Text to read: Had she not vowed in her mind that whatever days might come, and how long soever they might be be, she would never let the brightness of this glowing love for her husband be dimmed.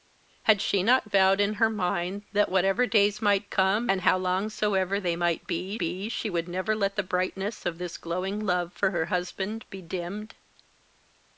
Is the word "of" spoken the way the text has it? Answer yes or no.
yes